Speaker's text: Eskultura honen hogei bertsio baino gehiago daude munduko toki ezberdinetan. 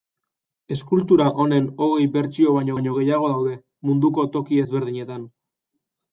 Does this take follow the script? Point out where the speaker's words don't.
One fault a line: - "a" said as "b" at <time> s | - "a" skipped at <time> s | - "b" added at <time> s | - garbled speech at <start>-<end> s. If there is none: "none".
- "baino" added at 2.7 s